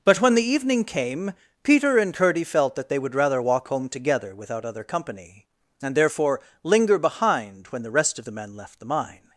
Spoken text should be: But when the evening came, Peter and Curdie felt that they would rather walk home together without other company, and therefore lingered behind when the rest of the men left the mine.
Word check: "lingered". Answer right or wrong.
wrong